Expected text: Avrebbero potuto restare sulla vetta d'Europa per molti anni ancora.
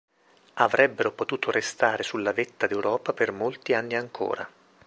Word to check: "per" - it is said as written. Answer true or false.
true